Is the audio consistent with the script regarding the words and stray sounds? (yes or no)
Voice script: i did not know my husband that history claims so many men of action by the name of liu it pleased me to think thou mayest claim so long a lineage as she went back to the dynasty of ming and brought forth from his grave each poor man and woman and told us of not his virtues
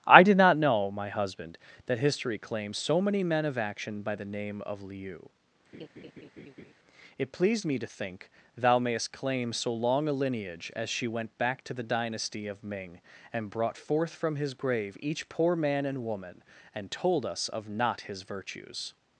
no